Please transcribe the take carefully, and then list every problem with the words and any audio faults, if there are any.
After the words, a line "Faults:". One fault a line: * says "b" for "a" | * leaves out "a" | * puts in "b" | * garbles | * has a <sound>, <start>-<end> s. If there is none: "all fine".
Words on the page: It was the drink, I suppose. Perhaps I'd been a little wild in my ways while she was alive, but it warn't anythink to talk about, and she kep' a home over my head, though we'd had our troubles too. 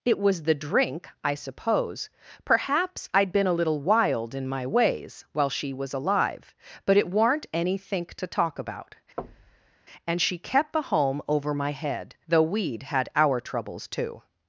It was the drink, I suppose. Perhaps I'd been a little wild in my ways while she was alive, but it warn't anythink to talk about, and she kept' a home over my head, though we'd had our troubles too.
Faults:
* has a thud, 9.2-9.8 s
* says "kept" for "kep"